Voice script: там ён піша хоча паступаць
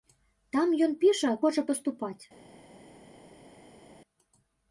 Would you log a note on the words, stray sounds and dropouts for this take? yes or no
no